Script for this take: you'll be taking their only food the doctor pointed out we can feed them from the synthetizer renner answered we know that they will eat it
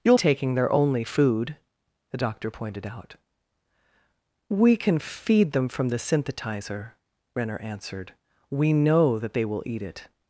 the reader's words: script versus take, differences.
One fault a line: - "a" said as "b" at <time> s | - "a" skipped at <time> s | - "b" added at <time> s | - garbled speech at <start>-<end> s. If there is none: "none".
- "be" skipped at 0.2 s